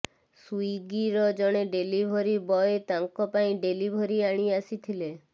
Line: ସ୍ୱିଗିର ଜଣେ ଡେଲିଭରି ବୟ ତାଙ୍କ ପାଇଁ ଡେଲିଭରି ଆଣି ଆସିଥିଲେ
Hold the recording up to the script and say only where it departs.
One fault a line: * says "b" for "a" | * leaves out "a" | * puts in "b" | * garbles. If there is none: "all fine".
all fine